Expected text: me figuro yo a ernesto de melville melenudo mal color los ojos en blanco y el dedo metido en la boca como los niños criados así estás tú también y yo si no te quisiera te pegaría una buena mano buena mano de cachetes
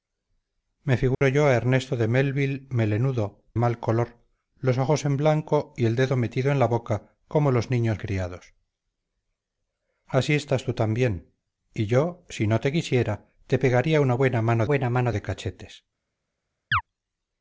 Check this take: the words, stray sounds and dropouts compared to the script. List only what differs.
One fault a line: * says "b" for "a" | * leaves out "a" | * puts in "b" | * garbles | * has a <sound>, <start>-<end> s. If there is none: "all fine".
* has a dropout, 1.1-1.2 s
* has a chirp, 16.7-16.8 s